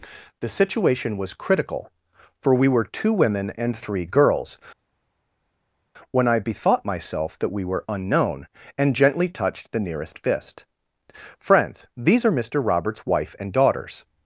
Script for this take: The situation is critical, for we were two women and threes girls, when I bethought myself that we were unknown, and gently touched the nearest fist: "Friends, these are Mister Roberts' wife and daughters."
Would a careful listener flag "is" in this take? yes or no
yes